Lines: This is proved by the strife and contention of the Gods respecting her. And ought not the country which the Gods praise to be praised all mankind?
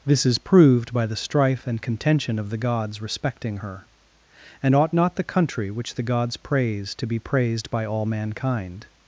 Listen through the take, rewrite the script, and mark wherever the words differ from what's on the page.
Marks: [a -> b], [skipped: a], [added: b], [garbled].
This is proved by the strife and contention of the Gods respecting her. And ought not the country which the Gods praise to be praised [added: by] all mankind?